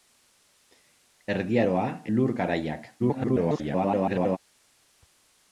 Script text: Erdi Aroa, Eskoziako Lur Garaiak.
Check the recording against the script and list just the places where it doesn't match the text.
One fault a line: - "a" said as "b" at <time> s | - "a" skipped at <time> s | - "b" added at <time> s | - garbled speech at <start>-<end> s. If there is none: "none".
- "Eskoziako" skipped at 1.8 s
- garbled speech at 3.0-4.4 s